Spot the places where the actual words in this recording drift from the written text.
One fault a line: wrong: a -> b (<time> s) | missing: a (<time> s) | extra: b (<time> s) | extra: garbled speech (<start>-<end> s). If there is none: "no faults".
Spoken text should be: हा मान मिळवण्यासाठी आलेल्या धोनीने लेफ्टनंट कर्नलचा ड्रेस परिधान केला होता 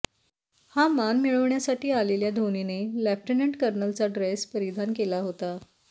no faults